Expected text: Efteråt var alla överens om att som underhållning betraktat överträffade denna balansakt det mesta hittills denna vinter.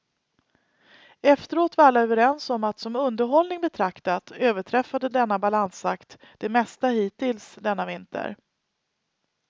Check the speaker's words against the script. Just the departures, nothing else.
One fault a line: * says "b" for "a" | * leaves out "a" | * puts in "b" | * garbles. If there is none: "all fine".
all fine